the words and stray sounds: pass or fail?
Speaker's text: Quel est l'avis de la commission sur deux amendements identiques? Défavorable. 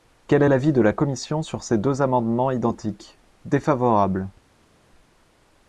fail